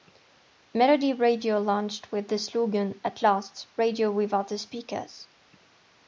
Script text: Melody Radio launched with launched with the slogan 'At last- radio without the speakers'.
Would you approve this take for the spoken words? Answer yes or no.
no